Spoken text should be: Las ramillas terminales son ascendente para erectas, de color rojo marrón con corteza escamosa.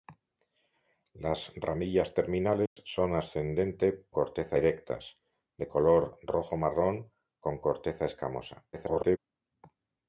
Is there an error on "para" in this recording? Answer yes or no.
yes